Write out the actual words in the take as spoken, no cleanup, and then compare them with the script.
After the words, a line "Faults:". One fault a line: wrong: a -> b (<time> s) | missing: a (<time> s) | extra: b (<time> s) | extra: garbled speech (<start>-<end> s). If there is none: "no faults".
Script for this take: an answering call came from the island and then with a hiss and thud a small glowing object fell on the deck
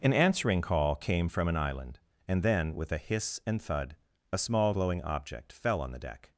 an answering call came from an island and then with a hiss and thud a small glowing object fell on the deck
Faults:
wrong: the -> an (1.5 s)